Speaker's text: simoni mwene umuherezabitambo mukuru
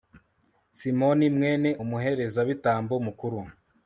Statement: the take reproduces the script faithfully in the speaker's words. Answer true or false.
true